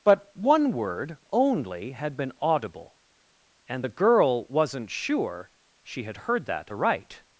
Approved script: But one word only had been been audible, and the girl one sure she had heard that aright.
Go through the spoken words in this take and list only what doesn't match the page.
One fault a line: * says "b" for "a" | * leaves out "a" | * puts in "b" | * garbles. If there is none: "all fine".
* leaves out "been"
* says "wasn't" for "one"